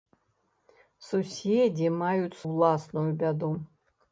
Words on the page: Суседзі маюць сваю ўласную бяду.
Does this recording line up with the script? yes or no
no